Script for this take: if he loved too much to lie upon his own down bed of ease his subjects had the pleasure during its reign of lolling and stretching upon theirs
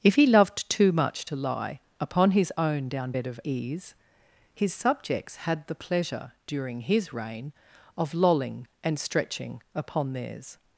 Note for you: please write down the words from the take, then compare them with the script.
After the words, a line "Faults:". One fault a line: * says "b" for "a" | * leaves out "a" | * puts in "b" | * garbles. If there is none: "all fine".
if he loved too much to lie upon his own down bed of ease his subjects had the pleasure during his reign of lolling and stretching upon theirs
Faults:
* says "his" for "its"